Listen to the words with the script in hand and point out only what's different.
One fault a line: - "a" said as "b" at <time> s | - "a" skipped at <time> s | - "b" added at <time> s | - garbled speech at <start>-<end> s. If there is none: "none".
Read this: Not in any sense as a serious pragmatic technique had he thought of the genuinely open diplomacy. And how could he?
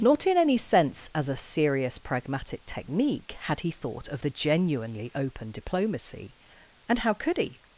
none